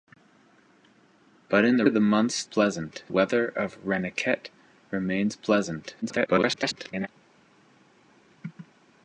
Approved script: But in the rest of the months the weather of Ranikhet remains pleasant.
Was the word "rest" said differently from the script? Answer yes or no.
yes